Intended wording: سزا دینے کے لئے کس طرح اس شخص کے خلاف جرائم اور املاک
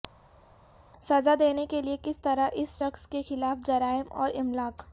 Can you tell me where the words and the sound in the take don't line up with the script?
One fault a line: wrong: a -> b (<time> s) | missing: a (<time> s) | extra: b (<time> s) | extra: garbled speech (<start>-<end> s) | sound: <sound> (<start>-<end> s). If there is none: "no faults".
no faults